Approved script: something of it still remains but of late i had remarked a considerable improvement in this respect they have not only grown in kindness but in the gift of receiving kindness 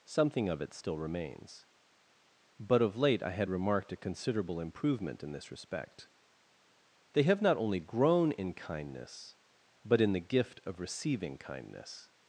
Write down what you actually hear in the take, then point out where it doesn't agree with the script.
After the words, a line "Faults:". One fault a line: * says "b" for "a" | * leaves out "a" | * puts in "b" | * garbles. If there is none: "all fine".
something of it still remains but of late i had remarked a considerable improvement in this respect they have not only grown in kindness but in the gift of receiving kindness
Faults:
all fine